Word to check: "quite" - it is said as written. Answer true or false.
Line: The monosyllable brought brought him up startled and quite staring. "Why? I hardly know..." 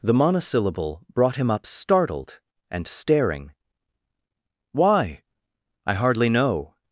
false